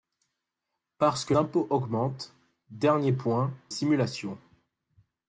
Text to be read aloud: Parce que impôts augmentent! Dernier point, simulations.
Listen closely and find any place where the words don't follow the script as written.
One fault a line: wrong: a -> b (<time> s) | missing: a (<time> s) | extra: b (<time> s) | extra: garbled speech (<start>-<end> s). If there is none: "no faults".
no faults